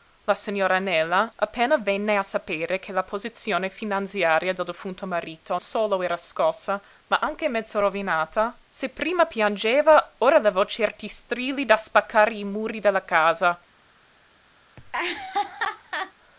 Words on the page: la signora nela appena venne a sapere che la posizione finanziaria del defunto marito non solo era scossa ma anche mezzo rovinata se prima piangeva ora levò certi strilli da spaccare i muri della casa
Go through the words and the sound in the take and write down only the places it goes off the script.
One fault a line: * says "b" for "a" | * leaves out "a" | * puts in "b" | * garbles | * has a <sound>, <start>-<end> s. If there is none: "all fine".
* leaves out "non"
* has a laugh, 14.8-16.1 s